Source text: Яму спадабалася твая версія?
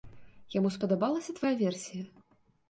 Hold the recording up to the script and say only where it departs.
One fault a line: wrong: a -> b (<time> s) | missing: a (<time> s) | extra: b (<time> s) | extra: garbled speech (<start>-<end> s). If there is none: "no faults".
no faults